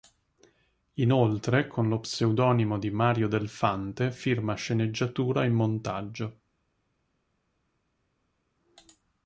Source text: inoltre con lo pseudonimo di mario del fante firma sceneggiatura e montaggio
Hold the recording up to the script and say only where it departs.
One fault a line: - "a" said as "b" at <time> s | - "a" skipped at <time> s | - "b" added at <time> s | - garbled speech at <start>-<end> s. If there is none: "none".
none